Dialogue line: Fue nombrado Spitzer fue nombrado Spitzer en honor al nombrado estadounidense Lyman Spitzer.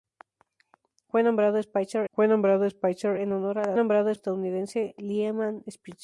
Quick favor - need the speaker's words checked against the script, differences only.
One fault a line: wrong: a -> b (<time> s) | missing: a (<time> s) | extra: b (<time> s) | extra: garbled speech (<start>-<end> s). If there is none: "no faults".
no faults